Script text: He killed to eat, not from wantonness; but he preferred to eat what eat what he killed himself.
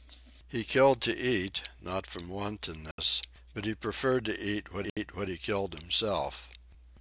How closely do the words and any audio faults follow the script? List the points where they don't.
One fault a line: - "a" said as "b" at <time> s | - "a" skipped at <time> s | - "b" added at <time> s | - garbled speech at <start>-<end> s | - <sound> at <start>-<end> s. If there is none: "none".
- dropout at 2.9-3.0 s
- dropout at 4.9-5.0 s